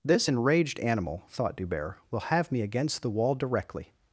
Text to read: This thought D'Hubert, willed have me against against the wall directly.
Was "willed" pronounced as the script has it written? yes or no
no